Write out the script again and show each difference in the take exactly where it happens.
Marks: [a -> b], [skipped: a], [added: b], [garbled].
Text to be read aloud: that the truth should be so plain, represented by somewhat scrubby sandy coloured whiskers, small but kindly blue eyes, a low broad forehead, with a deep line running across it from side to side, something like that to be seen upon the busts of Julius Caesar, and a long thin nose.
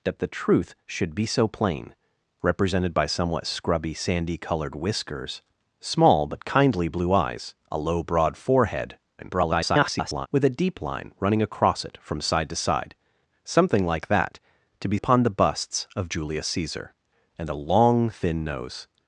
that the truth should be so plain, represented by somewhat scrubby sandy coloured whiskers, small but kindly blue eyes, a low broad forehead, [garbled] with a deep line running across it from side to side, something like that to be [skipped: seen] upon the busts of Julius Caesar, and a long thin nose.